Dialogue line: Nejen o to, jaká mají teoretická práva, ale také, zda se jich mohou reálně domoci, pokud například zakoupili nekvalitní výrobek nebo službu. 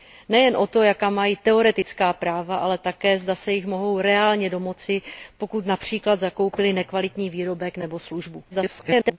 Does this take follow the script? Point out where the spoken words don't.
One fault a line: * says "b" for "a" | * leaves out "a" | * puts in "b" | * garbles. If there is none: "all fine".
* garbles